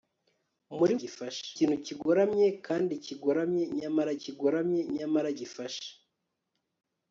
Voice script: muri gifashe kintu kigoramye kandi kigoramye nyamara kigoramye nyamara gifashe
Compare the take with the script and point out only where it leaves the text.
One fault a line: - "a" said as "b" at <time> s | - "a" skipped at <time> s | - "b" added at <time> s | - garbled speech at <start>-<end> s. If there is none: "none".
none